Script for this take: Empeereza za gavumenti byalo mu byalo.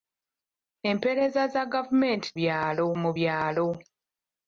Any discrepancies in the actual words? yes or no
no